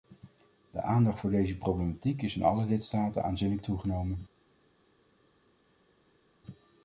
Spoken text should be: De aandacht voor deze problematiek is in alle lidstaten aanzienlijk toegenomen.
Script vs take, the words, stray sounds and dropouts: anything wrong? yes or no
no